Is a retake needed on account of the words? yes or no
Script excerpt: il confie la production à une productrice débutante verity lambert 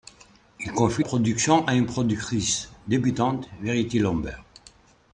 yes